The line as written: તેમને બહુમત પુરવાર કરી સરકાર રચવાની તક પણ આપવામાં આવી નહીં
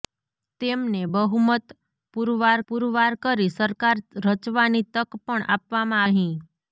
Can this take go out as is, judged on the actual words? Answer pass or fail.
fail